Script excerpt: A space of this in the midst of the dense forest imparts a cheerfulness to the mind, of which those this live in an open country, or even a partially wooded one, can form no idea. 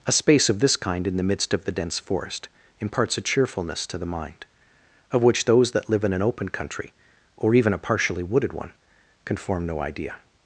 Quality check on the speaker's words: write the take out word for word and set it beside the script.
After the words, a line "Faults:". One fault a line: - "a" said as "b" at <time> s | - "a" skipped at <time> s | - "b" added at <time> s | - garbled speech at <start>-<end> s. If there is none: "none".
A space of this kind in the midst of the dense forest imparts a cheerfulness to the mind, of which those that live in an open country, or even a partially wooded one, can form no idea.
Faults:
- "kind" added at 0.8 s
- "this" said as "that" at 5.7 s